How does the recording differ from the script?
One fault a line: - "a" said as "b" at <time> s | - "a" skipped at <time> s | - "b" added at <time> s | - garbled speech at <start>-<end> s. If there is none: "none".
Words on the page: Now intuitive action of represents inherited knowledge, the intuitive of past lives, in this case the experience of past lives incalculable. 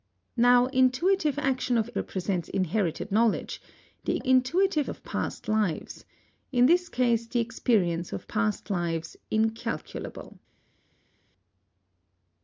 none